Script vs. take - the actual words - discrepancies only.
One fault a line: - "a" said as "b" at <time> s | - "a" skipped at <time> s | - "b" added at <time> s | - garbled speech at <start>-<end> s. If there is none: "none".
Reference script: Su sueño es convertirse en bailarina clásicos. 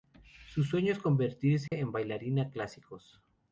none